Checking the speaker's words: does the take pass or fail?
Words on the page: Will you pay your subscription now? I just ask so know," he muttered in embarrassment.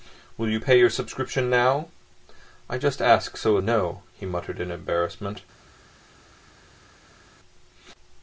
pass